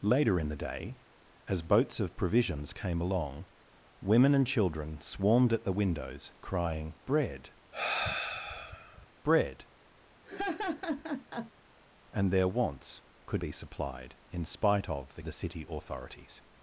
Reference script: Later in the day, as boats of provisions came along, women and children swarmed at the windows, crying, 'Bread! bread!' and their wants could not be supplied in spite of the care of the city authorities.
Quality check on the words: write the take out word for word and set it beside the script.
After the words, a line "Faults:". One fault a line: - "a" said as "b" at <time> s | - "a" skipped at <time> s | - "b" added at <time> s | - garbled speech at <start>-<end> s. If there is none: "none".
Later in the day, as boats of provisions came along, women and children swarmed at the windows, crying, 'Bread! bread!' and their wants could be supplied in spite of the the city authorities.
Faults:
- "not" skipped at 13.4 s
- "care of" skipped at 15.2 s